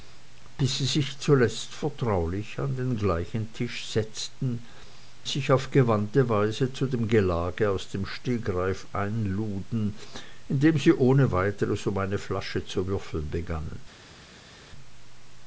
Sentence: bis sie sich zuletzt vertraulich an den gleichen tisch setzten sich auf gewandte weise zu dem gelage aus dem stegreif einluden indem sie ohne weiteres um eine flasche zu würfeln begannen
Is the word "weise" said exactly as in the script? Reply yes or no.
yes